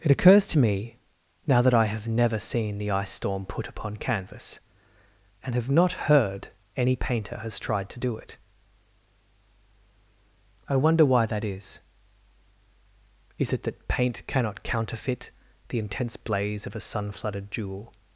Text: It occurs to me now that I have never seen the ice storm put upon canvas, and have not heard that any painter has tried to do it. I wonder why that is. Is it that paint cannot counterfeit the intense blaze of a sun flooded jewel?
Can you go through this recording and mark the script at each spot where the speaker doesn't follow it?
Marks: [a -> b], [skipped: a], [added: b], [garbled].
It occurs to me now that I have never seen the ice storm put upon canvas, and have not heard [skipped: that] any painter has tried to do it. I wonder why that is. Is it that paint cannot counterfeit the intense blaze of a sun flooded jewel?